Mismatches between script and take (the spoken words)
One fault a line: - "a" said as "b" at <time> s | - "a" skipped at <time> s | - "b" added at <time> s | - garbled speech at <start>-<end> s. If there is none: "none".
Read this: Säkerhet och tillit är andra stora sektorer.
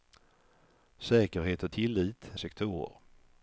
- "är andra stora" skipped at 2.3 s